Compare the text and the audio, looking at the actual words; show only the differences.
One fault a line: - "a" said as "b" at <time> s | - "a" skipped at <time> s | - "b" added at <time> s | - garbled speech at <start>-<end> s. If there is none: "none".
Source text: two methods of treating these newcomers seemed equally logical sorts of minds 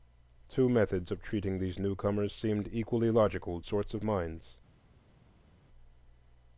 none